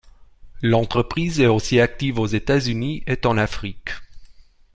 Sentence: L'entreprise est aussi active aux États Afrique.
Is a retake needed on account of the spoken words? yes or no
yes